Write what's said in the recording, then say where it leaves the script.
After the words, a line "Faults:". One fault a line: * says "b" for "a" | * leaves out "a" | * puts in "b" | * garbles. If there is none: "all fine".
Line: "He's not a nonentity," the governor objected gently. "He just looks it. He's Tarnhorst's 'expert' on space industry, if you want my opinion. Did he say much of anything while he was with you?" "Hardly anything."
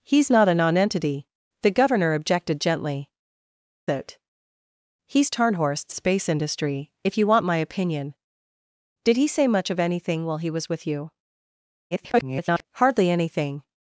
"He's not a nonentity," the governor objected gently. "It. He's Tarnhorst's 'space industry, if you want my opinion. Did he say much of anything while he was with you?" [garbled] "Hardly anything."
Faults:
* leaves out "He just looks"
* leaves out "expert on"
* garbles